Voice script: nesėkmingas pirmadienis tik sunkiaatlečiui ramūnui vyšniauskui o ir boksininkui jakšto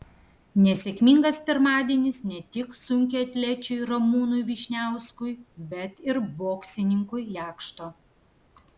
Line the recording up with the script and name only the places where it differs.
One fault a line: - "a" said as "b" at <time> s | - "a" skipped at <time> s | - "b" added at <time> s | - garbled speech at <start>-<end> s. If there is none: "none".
- "ne" added at 2.3 s
- "o" said as "bet" at 5.7 s